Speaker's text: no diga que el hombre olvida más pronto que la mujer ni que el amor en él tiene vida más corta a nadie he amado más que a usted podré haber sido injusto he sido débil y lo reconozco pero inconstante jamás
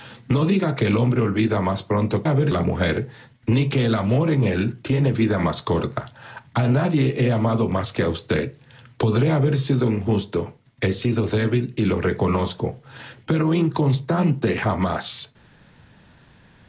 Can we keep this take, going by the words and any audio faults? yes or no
no